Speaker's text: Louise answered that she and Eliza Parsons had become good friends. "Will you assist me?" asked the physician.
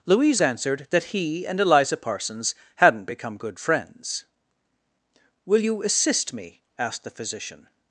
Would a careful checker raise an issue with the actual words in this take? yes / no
yes